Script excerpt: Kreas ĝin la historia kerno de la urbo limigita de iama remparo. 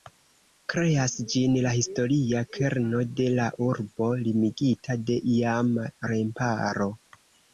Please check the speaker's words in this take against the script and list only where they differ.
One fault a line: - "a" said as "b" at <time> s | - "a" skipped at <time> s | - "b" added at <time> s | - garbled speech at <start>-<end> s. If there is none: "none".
none